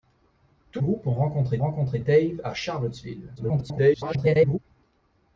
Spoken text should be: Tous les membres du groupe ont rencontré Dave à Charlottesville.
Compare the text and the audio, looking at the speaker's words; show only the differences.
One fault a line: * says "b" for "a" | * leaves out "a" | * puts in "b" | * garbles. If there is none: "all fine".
* leaves out "les membres du"
* puts in "rencontré"
* garbles